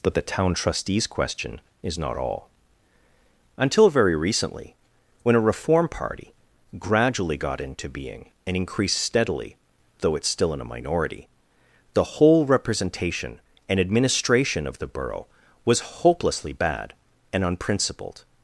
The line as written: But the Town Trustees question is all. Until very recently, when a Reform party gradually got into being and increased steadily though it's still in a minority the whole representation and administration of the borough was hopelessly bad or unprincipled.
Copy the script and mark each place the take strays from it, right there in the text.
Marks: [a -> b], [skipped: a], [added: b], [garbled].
But the Town Trustees question is [added: not] all. Until very recently, when a Reform party gradually got into being and increased steadily though it's still in a minority the whole representation and administration of the borough was hopelessly bad [or -> and] unprincipled.